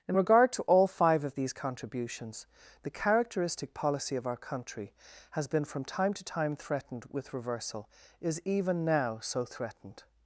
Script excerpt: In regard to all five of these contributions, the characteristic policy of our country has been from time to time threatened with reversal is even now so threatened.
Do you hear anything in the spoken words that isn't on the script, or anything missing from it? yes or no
no